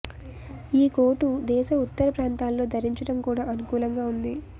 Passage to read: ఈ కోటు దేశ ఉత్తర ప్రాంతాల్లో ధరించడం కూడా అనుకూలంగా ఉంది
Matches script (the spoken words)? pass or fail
pass